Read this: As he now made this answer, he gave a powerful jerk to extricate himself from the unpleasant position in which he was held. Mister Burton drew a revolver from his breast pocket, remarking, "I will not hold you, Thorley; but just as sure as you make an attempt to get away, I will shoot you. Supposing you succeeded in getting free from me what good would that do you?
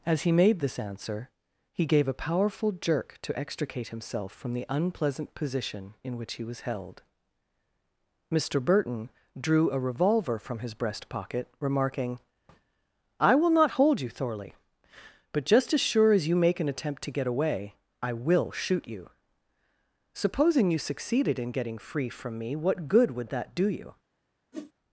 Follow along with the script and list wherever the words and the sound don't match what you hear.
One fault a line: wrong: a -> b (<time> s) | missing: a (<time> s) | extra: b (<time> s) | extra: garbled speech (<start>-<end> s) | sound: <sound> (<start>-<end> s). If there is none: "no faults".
missing: now (0.3 s)
sound: whoosh (24.5-24.7 s)